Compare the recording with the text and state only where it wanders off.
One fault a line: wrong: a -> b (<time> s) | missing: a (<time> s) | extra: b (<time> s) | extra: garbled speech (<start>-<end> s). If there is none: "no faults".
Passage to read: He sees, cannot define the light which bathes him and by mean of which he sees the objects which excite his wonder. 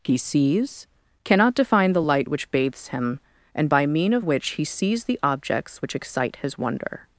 no faults